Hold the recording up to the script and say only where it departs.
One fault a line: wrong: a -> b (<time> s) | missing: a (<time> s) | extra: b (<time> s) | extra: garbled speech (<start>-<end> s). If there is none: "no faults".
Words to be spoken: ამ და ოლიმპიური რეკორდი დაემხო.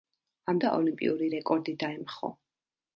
no faults